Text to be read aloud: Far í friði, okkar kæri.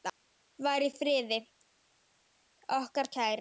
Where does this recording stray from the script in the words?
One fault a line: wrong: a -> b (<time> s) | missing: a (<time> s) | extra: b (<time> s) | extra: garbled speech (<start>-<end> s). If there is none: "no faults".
no faults